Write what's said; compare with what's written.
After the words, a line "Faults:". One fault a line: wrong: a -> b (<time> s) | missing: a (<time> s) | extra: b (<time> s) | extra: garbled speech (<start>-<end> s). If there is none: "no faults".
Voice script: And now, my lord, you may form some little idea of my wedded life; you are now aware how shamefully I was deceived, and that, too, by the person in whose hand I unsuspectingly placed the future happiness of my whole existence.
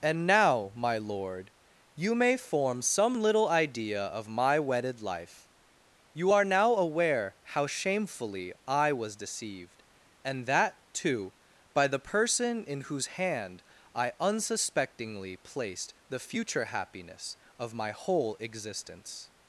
And now, my lord, you may form some little idea of my wedded life; you are now aware how shamefully I was deceived, and that, too, by the person in whose hand I unsuspectingly placed the future happiness of my whole existence.
Faults:
no faults